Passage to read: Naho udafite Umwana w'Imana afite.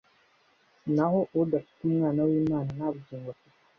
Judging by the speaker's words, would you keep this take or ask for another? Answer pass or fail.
fail